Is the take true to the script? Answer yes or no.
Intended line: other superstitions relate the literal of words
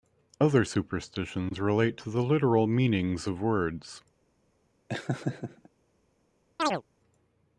no